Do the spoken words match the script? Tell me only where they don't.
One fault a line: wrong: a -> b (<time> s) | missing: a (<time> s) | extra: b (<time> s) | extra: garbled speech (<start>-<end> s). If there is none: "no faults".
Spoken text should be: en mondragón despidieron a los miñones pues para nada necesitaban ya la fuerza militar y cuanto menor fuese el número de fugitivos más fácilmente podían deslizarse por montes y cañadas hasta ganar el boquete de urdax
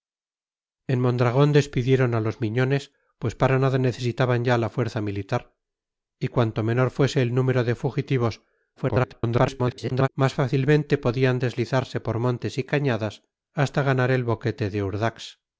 extra: garbled speech (8.8-10.1 s)